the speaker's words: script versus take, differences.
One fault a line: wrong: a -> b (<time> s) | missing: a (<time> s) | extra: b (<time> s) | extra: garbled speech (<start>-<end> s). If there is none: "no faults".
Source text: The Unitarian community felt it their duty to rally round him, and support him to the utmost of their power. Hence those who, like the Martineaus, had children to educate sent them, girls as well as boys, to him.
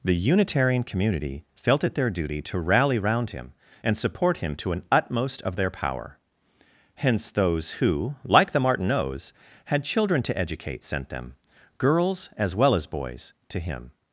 wrong: the -> an (4.7 s)